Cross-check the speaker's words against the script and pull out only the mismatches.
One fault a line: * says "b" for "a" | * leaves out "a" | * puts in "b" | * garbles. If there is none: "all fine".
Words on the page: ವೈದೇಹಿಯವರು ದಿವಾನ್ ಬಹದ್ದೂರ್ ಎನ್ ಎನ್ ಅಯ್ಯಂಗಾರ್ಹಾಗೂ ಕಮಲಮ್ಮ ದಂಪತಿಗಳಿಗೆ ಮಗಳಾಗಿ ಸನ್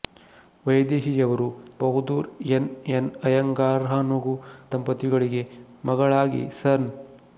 * leaves out "ದಿವಾನ್"
* leaves out "ಕಮಲಮ್ಮ"